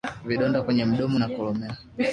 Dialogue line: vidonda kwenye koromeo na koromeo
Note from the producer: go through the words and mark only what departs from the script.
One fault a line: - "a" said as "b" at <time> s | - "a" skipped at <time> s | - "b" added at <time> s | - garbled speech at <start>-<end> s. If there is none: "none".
- "koromeo" said as "mdomo" at 0.9 s